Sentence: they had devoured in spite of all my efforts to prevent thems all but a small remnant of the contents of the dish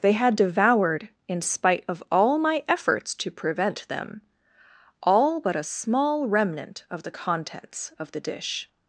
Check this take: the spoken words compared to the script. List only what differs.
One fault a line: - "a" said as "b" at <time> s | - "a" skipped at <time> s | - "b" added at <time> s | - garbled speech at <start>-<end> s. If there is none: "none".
- "thems" said as "them" at 3.9 s